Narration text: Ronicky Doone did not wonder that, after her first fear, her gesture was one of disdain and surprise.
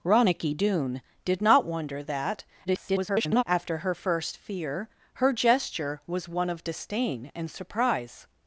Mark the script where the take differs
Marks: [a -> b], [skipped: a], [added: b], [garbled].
Ronicky Doone did not wonder that, [garbled] after her first fear, her gesture was one of disdain and surprise.